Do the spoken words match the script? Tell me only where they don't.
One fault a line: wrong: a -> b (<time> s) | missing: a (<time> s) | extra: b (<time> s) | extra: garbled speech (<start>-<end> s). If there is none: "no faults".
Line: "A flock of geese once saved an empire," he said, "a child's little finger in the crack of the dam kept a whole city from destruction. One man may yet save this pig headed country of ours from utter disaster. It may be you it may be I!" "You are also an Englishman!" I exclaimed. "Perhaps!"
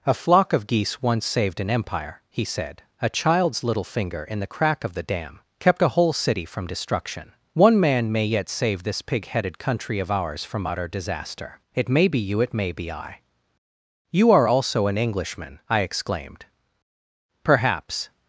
no faults